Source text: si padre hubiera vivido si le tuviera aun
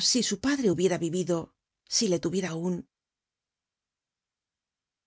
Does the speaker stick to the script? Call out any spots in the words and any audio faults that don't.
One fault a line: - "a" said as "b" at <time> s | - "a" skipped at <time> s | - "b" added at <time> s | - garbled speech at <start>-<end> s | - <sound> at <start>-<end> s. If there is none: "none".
- "su" added at 0.2 s